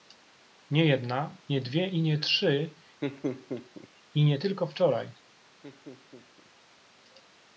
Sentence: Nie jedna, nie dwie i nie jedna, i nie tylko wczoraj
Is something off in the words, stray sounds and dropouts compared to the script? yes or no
yes